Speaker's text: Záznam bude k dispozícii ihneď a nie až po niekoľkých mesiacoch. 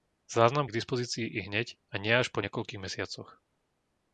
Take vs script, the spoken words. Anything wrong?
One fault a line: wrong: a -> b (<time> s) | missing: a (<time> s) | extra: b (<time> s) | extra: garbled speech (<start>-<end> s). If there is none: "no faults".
missing: bude (0.7 s)